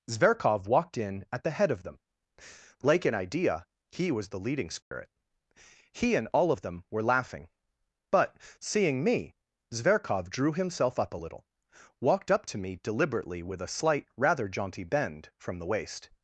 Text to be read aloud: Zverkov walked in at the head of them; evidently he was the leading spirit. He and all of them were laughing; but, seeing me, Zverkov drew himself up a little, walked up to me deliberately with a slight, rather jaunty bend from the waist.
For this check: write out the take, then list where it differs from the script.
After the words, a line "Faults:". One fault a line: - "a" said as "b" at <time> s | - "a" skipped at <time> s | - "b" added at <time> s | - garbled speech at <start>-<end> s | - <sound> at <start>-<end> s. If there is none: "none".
Zverkov walked in at the head of them; like an idea he was the leading spirit. He and all of them were laughing; but, seeing me, Zverkov drew himself up a little, walked up to me deliberately with a slight, rather jaunty bend from the waist.
Faults:
- "evidently" said as "like an idea" at 2.8 s
- dropout at 4.8-4.9 s